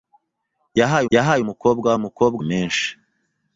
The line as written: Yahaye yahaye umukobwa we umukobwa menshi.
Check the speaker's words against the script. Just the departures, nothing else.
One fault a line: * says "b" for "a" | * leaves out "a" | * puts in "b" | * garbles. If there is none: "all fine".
all fine